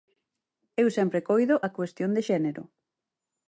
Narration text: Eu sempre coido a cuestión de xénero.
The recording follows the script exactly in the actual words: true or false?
true